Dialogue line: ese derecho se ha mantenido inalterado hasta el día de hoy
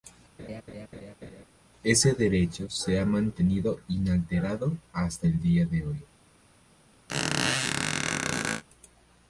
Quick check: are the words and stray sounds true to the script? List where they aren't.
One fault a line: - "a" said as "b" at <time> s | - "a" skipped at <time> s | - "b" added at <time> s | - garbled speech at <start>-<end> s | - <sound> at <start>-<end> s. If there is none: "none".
- laugh at 0.4-1.4 s
- squeak at 7.1-8.6 s